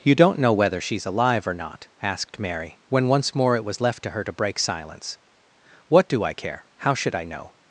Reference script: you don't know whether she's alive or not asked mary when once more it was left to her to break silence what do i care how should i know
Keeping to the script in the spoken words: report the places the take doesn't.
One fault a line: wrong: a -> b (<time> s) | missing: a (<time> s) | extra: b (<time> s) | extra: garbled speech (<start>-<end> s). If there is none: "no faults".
no faults